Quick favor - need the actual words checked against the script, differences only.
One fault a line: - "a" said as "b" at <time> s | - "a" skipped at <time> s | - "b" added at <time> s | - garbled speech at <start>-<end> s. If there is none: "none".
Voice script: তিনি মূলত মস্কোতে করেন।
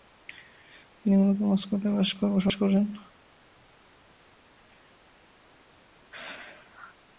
- "বসবাস" added at 1.9 s